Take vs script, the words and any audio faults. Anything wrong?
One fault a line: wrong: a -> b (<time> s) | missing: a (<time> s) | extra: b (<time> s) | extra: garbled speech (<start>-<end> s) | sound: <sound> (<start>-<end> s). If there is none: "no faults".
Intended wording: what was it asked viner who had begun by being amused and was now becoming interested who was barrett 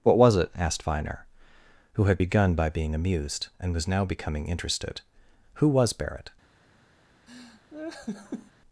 sound: laugh (7.3-8.5 s)